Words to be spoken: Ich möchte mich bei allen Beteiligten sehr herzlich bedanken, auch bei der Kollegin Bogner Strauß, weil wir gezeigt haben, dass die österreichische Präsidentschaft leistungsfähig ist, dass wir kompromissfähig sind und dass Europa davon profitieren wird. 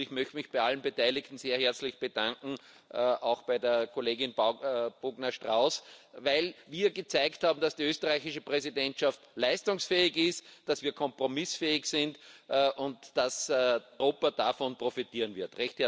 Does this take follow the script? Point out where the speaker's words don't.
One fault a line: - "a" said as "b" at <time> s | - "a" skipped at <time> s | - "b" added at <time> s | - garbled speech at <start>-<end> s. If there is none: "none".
none